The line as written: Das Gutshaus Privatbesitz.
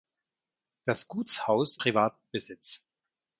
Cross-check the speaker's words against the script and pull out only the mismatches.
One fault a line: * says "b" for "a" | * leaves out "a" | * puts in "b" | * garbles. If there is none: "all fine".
all fine